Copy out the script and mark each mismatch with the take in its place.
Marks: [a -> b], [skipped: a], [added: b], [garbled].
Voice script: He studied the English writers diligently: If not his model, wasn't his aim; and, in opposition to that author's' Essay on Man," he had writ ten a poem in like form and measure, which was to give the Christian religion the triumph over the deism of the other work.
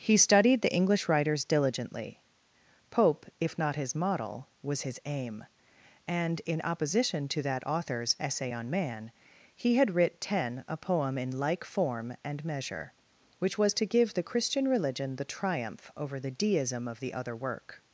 He studied the English writers diligently: [added: Pope] If not his model, [wasn't -> was] his aim; and, in opposition to that author's' Essay on Man," he had writ ten a poem in like form and measure, which was to give the Christian religion the triumph over the deism of the other work.